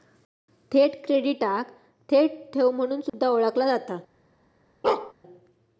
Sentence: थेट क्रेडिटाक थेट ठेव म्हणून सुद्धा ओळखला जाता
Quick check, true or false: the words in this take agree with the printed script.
true